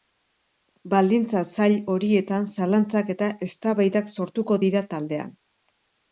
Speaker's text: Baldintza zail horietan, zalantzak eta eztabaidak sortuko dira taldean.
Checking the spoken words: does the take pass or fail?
pass